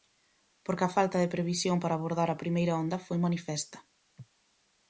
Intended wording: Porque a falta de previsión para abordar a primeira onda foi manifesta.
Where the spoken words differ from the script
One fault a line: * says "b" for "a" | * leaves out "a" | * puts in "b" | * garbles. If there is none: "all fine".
all fine